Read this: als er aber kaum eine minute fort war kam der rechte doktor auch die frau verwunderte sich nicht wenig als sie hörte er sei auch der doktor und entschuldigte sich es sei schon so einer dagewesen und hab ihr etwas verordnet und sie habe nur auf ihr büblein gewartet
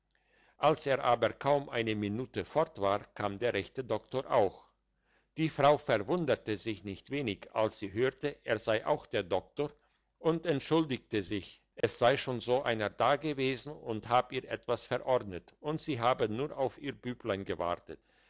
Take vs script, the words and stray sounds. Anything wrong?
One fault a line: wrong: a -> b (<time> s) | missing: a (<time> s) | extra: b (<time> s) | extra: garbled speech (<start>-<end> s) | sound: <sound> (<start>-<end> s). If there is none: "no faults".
sound: dropout (11.8-11.8 s)